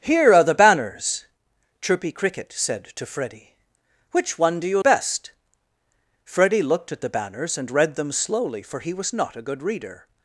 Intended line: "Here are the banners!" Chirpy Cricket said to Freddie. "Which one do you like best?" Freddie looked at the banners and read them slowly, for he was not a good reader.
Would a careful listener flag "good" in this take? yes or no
no